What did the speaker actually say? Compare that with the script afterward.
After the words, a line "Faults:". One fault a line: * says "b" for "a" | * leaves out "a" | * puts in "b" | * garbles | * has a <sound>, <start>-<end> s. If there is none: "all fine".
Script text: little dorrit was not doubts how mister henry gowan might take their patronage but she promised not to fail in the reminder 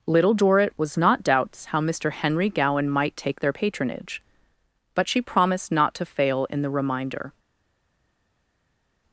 little dorrit was not doubts how mister henry gowan might take their patronage but she promised not to fail in the reminder
Faults:
all fine